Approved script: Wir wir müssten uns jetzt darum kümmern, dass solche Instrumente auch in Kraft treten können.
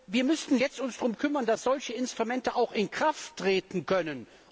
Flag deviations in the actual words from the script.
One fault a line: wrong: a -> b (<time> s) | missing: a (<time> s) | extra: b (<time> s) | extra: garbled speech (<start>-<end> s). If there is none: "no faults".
missing: wir (0.2 s)